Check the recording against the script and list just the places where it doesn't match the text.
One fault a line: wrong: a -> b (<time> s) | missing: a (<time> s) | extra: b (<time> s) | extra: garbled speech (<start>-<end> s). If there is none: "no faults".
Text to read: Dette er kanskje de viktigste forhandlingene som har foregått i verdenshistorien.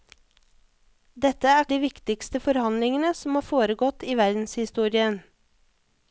missing: kanskje (1.7 s)